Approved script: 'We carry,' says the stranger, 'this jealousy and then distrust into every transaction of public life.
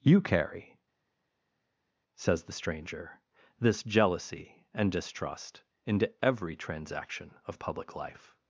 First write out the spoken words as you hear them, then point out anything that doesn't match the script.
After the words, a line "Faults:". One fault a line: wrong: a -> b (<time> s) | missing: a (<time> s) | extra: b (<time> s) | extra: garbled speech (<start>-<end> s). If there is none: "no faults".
'You carry,' says the stranger, 'this jealousy and distrust into every transaction of public life.
Faults:
wrong: We -> You (0.0 s)
missing: then (4.9 s)